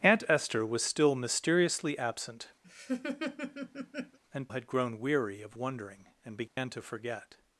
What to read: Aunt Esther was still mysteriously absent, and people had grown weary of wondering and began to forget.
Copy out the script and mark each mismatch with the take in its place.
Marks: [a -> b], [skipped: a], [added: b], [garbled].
Aunt Esther was still mysteriously absent, and [skipped: people] had grown weary of wondering and began to forget.